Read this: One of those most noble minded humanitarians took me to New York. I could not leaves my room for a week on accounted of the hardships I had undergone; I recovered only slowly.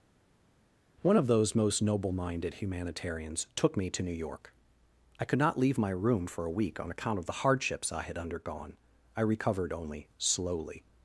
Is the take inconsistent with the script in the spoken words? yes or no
yes